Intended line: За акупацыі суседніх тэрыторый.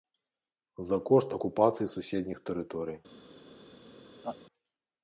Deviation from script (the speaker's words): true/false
true